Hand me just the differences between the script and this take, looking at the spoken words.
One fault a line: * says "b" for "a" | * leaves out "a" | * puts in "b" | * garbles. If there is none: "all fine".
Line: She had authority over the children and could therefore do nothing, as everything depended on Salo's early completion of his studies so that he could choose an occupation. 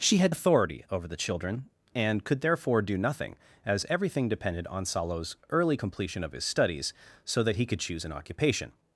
all fine